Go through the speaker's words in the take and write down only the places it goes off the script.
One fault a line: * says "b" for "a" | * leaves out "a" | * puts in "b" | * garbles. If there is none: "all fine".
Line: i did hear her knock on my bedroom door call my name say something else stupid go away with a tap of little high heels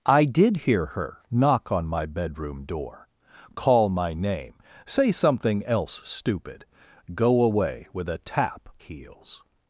* leaves out "of little high"